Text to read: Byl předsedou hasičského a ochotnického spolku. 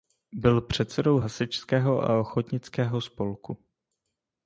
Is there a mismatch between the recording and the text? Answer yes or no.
no